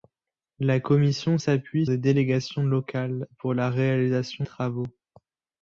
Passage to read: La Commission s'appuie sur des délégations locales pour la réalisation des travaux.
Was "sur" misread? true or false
true